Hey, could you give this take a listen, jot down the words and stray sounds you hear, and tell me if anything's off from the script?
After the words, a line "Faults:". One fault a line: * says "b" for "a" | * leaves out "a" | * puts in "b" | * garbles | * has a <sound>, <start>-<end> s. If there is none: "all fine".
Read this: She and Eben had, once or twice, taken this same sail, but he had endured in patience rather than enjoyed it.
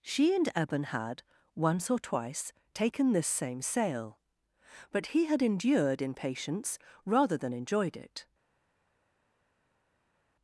She and Eben had, once or twice, taken this same sail, but he had endured in patience rather than enjoyed it.
Faults:
all fine